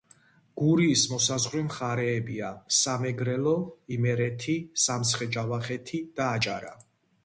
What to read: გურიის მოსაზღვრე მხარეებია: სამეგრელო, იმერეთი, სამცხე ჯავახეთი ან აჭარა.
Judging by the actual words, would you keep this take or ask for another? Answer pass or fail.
fail